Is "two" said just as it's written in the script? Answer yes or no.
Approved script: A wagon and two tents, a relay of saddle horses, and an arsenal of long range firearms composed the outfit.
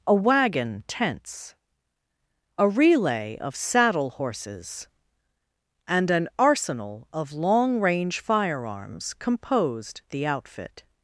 no